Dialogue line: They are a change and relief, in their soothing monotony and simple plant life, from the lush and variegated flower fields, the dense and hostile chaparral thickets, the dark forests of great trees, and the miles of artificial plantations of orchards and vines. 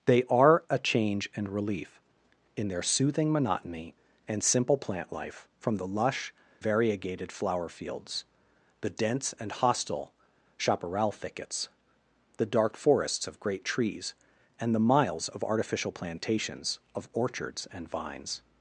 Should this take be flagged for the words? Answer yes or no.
yes